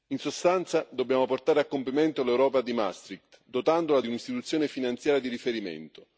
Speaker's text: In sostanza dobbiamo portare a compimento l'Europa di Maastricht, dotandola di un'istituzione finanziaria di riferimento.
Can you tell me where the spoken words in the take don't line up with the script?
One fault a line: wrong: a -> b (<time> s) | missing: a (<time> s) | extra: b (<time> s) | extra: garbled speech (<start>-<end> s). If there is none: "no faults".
no faults